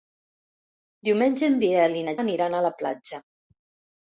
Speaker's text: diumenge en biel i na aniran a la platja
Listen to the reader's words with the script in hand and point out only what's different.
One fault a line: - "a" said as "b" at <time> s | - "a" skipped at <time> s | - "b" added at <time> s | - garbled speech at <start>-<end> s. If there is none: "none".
none